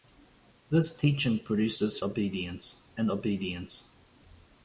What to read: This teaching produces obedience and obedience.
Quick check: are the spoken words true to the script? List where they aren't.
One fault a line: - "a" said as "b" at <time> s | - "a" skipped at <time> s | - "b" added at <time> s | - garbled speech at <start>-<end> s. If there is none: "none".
none